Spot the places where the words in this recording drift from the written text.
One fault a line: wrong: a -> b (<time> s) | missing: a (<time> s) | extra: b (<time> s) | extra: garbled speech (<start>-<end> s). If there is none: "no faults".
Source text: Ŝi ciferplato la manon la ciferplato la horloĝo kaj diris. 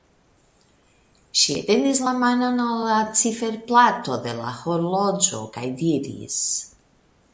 wrong: ciferplato -> etendis (1.6 s)
extra: al (2.7 s)
extra: de (4.3 s)